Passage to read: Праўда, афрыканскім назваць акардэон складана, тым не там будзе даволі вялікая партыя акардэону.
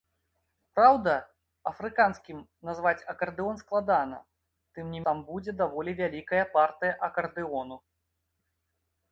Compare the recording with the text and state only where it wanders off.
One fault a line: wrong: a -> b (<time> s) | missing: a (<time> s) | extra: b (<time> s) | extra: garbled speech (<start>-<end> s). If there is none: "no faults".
no faults